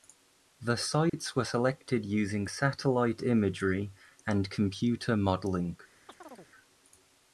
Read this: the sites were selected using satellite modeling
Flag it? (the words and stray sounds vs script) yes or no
yes